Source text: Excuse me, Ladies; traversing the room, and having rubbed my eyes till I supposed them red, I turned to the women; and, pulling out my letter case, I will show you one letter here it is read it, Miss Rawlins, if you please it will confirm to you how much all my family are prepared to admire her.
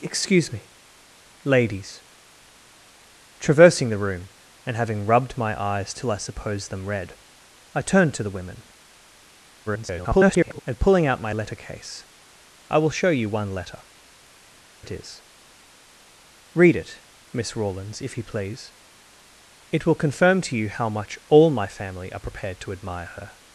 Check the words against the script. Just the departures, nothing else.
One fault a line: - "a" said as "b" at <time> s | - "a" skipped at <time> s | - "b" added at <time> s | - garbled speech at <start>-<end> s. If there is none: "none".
- garbled speech at 9.7-10.6 s
- "here" skipped at 13.8 s